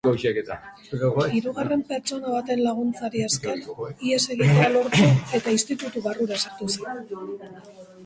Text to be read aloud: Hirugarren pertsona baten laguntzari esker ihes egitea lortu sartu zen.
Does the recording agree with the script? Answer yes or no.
no